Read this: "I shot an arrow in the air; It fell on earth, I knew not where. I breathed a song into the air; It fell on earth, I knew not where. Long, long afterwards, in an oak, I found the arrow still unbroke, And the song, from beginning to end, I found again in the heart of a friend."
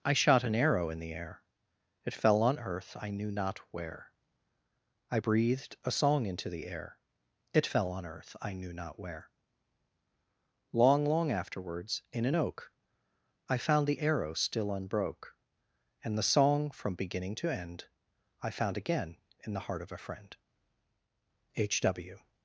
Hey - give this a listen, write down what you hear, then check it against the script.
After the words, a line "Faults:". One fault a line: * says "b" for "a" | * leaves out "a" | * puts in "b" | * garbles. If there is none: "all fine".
"I shot an arrow in the air; It fell on earth, I knew not where. I breathed a song into the air; It fell on earth, I knew not where. Long, long afterwards, in an oak, I found the arrow still unbroke, And the song, from beginning to end, I found again in the heart of a friend." H. W
Faults:
* puts in "H W"